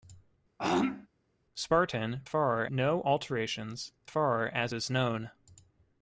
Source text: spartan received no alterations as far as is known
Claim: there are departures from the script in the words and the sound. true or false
true